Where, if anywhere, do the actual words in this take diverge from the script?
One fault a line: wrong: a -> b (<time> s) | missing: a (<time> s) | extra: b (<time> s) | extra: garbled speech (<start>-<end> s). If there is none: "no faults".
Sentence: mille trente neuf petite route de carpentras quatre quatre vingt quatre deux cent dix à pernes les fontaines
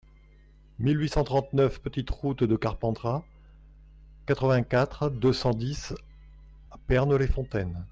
extra: huit cent (1.0 s)
missing: quatre (4.5 s)